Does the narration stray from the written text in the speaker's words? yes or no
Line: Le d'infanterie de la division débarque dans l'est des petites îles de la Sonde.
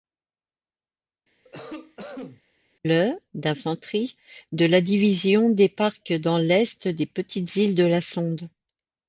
no